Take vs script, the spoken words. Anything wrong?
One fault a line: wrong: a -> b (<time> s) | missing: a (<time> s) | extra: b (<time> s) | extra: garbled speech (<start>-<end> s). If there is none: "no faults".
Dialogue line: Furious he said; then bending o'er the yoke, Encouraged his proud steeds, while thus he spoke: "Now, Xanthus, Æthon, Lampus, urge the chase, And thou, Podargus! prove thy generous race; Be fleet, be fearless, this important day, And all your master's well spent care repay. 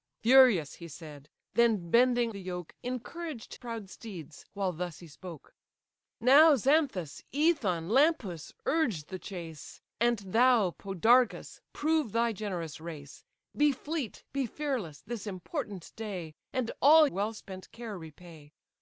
missing: o'er (2.3 s)
missing: his (3.5 s)
missing: your master's (17.1 s)